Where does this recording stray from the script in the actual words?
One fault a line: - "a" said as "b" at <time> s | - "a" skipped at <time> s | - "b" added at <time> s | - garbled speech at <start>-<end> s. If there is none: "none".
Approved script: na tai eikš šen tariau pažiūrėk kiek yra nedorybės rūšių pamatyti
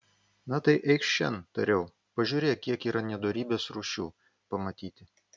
none